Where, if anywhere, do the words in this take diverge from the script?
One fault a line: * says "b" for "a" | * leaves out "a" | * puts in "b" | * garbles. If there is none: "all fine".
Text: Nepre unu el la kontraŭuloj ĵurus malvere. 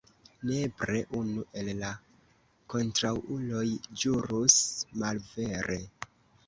all fine